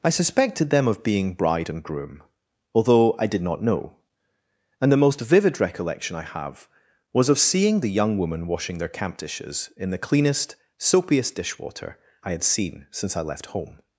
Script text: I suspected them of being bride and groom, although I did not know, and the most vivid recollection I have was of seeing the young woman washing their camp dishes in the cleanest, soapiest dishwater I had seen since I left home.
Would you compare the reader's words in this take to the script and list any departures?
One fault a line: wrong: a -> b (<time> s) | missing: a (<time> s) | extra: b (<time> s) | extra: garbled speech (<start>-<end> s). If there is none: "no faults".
no faults